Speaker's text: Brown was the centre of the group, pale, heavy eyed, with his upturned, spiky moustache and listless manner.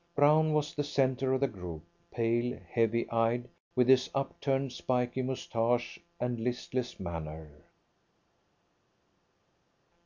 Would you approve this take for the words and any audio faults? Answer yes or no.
yes